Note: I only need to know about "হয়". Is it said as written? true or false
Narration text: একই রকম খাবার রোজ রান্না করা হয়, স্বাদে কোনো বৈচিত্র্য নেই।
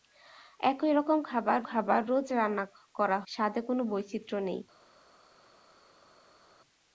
false